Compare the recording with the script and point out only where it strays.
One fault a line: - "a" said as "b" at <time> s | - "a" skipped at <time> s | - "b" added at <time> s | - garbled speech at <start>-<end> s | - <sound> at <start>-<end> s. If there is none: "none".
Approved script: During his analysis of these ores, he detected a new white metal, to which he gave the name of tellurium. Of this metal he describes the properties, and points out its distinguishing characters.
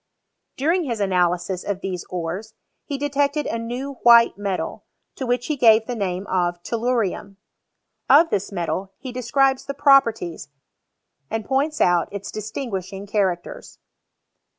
none